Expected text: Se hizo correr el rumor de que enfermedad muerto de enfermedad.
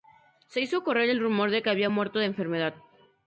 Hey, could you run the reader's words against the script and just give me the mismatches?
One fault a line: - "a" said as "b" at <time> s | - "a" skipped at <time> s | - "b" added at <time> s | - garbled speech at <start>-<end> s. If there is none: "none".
- "enfermedad" said as "había" at 1.7 s